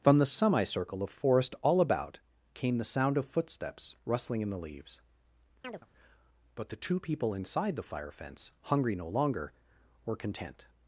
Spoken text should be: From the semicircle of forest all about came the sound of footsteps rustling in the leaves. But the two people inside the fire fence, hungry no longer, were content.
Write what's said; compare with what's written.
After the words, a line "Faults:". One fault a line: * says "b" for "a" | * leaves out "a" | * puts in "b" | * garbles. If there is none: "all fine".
From the semicircle of forest all about came the sound of footsteps rustling in the leaves. But the two people inside the fire fence, hungry no longer, were content.
Faults:
all fine